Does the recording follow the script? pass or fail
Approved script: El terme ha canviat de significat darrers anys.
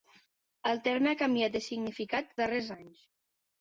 pass